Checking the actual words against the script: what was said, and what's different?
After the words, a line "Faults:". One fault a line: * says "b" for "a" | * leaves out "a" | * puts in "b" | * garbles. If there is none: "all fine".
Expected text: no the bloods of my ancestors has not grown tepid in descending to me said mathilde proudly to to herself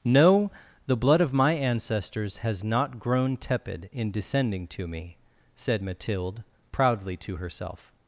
no the blood of my ancestors has not grown tepid in descending to me said mathilde proudly to herself
Faults:
* says "blood" for "bloods"
* leaves out "to"